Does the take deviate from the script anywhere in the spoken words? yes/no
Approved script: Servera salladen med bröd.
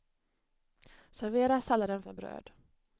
no